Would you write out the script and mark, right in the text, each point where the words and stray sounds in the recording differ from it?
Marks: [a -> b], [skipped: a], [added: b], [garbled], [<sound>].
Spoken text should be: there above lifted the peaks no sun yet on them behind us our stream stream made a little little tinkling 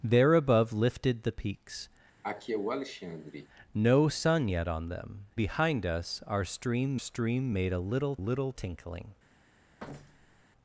there above lifted the peaks [cough] no sun yet on them behind us our stream stream made a little little tinkling [thud]